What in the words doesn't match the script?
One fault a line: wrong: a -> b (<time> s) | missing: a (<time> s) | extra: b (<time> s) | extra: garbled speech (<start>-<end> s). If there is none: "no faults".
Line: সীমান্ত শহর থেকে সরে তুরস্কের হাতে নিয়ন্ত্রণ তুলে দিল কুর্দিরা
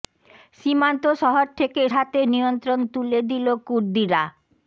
missing: সরে তুরস্কের (1.8 s)